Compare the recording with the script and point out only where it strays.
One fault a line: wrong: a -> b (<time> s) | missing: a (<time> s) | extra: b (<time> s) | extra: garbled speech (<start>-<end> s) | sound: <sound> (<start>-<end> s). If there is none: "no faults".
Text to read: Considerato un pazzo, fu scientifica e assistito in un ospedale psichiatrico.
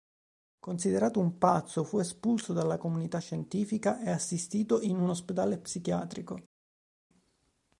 extra: espulso dalla comunità (2.0 s)